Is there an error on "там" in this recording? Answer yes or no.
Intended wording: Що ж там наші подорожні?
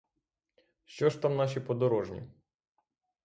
no